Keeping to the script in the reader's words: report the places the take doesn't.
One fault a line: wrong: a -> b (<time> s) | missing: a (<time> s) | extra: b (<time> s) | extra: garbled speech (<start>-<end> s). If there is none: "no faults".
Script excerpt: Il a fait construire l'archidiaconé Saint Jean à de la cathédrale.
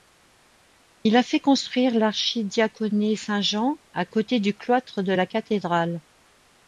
extra: côté du cloître (4.0 s)